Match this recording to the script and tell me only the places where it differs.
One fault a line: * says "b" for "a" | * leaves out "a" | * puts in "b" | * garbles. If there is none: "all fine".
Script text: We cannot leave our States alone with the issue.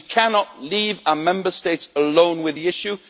* puts in "Member"